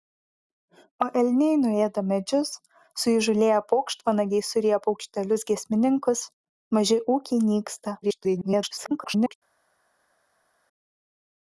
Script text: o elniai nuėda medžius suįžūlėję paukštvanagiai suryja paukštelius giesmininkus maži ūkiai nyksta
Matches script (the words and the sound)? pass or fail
fail